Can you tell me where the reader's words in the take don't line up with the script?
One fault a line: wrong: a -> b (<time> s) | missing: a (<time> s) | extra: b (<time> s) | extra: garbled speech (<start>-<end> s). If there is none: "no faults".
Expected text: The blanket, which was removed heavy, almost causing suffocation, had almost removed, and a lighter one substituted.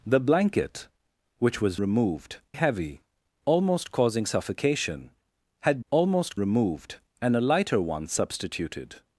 no faults